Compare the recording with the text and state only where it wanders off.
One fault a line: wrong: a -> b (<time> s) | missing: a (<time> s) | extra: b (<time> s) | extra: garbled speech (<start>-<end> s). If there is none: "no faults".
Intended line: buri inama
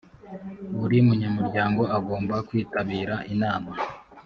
extra: munyamuryango agomba kwitabira (1.1 s)